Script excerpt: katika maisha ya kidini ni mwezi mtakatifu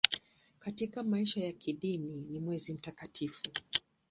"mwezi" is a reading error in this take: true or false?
false